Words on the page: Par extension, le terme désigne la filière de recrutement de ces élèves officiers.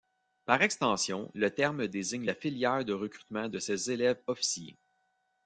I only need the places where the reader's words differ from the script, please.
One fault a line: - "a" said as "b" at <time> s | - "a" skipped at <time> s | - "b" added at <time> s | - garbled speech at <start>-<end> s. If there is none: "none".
none